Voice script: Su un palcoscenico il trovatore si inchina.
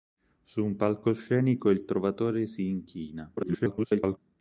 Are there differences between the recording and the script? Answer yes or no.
yes